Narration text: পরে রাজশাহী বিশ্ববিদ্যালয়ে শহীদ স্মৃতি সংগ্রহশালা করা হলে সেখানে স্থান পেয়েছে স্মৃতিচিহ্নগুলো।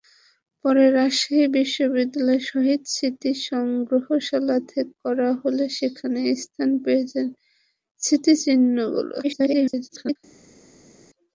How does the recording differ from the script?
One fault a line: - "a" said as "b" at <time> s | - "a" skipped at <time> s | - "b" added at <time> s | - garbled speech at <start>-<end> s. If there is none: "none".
- garbled speech at 9.2-10.2 s